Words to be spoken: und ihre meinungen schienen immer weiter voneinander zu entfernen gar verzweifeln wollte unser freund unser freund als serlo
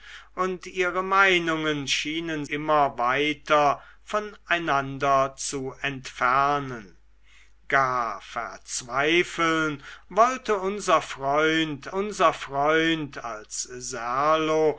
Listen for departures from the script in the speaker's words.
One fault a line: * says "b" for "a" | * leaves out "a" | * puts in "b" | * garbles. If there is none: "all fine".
all fine